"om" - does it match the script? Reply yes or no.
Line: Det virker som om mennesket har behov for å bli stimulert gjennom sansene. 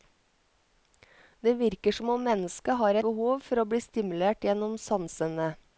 yes